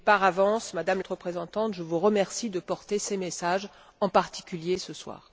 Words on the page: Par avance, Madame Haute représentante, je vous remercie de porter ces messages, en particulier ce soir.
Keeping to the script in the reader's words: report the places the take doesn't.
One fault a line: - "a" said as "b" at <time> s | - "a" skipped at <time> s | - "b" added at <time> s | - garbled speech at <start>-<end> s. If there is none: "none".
none